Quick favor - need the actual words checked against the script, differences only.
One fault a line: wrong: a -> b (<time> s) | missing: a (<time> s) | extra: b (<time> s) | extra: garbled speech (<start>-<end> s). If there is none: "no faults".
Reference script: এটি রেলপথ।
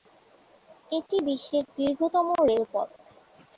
extra: বিশ্বের দীর্ঘতম (1.3 s)